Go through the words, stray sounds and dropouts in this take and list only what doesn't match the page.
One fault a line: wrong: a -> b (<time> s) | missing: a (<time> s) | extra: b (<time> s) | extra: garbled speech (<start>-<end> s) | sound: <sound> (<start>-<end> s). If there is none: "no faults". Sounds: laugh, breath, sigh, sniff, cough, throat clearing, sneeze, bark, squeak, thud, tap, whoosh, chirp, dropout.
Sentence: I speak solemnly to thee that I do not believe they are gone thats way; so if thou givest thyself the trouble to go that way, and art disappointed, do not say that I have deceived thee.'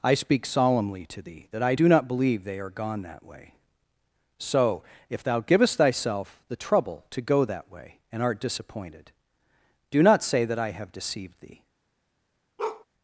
wrong: thats -> that (3.0 s)
sound: bark (12.6-12.8 s)